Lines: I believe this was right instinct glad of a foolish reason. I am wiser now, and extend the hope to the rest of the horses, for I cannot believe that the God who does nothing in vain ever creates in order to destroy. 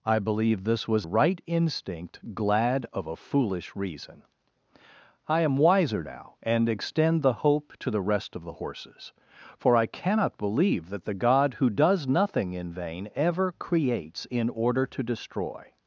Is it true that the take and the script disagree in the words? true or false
false